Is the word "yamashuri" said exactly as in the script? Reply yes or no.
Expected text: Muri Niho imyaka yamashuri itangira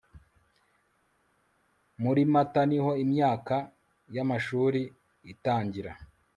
yes